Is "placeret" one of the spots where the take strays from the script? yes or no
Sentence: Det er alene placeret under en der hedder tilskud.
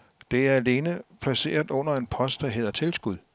no